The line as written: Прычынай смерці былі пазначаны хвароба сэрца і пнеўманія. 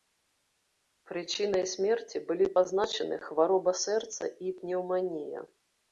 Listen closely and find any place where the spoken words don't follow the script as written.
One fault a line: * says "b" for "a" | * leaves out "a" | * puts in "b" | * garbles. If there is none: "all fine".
all fine